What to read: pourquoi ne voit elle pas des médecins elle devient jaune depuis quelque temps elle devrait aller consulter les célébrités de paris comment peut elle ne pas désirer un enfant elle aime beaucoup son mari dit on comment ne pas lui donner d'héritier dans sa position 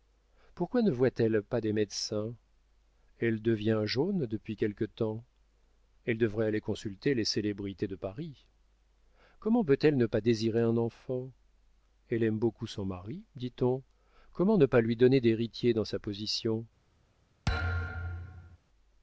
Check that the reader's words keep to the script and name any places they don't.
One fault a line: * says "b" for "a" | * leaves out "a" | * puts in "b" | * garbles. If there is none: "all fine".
all fine